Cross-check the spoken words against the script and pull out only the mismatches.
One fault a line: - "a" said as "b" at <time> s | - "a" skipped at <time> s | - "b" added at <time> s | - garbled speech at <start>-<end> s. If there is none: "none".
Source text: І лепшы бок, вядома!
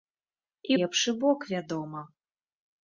none